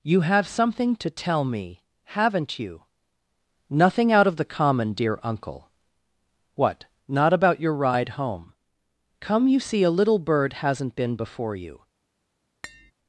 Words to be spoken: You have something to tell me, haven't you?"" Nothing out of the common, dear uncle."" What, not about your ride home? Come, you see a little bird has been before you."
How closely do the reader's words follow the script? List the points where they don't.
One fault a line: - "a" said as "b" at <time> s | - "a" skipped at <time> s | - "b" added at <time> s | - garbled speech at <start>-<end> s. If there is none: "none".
- "has" said as "hasn't" at 10.5 s